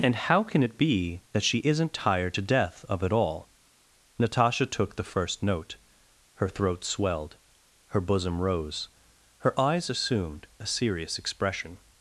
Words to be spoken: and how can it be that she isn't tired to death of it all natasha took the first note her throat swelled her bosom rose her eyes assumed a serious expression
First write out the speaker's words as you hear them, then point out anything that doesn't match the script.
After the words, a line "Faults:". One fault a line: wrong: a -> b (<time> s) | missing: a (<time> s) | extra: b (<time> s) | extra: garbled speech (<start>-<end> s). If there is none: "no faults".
and how can it be that she isn't tired to death of it all natasha took the first note her throat swelled her bosom rose her eyes assumed a serious expression
Faults:
no faults